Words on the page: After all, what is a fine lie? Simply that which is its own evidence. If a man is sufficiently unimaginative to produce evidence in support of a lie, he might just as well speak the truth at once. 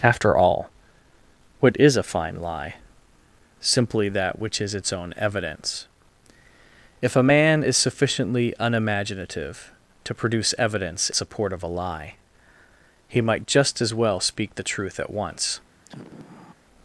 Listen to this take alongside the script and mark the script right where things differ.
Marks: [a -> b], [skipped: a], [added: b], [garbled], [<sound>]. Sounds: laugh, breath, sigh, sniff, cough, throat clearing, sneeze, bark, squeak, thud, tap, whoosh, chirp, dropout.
After all, what is a fine lie? Simply that which is its own evidence. If a man is sufficiently unimaginative to produce evidence [skipped: in] support of a lie, he might just as well speak the truth at once. [sigh]